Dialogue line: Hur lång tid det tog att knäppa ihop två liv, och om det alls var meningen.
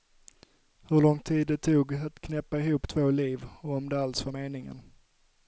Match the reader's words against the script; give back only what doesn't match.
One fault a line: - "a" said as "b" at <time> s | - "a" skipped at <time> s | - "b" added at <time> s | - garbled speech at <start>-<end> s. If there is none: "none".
none